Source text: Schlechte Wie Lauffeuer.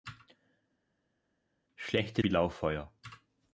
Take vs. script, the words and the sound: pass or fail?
pass